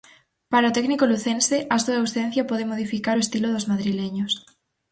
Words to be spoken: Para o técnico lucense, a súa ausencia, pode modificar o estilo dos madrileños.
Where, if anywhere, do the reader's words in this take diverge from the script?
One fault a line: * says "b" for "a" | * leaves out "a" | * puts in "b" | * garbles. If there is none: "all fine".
all fine